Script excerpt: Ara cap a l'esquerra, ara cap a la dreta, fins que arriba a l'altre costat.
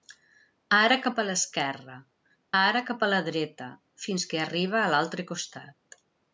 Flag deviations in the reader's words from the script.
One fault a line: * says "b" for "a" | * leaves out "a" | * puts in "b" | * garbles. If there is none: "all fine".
all fine